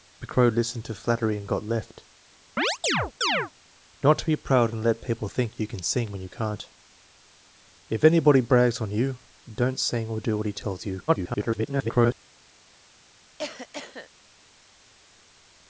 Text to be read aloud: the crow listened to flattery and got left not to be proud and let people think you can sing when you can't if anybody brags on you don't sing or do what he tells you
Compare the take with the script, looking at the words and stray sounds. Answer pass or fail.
fail